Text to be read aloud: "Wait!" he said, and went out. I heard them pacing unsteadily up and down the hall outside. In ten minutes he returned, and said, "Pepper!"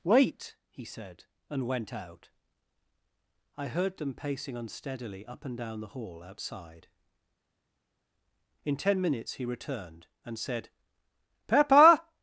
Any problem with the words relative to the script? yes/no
no